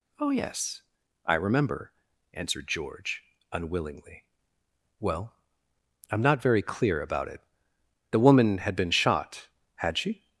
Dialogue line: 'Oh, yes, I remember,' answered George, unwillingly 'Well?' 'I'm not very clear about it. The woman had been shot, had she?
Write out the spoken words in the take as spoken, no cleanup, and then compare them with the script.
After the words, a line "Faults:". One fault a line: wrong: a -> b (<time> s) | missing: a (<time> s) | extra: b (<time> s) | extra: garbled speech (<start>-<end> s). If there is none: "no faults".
'Oh, yes, I remember,' answered George, unwillingly 'Well?' 'I'm not very clear about it. The woman had been shot, had she?
Faults:
no faults